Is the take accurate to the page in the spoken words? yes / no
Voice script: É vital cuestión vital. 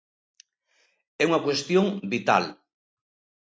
no